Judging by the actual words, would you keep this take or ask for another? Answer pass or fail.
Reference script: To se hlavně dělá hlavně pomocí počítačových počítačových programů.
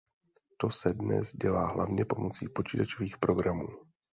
fail